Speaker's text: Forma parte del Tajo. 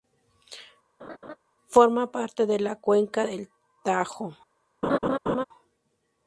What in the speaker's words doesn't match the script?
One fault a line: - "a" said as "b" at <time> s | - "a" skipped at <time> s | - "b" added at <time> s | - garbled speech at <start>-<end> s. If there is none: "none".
- "de la cuenca" added at 2.5 s